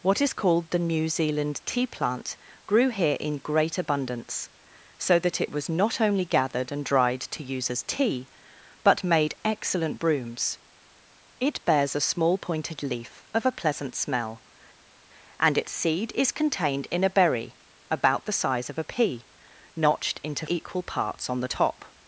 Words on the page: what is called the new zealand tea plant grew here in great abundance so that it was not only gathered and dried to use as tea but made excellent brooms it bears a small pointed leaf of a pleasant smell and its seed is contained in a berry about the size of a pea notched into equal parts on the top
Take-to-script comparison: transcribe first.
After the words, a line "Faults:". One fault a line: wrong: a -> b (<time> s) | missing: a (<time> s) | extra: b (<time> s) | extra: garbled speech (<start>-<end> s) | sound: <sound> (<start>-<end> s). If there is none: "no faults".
what is called the new zealand tea plant grew here in great abundance so that it was not only gathered and dried to use as tea but made excellent brooms it bears a small pointed leaf of a pleasant smell and its seed is contained in a berry about the size of a pea notched into equal parts on the top
Faults:
no faults